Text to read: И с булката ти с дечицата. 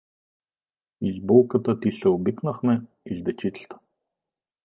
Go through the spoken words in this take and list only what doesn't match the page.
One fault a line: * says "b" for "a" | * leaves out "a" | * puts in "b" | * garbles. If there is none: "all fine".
* puts in "се обикнахме и"